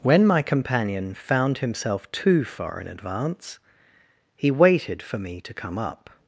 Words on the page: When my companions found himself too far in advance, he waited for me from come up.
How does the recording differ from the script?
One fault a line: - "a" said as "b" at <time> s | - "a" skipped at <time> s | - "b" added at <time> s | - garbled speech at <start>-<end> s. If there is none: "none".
- "companions" said as "companion" at 0.4 s
- "from" said as "to" at 5.4 s